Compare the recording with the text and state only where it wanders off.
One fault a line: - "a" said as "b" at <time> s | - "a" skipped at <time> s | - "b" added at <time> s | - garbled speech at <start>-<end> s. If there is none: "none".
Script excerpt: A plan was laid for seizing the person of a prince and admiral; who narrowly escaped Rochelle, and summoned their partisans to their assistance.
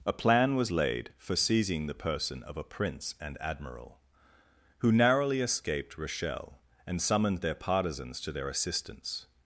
none